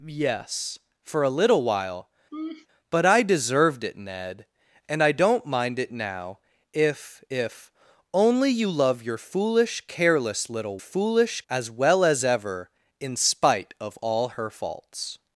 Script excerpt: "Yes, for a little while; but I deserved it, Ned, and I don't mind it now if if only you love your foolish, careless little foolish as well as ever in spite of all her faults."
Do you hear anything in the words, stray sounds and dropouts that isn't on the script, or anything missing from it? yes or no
yes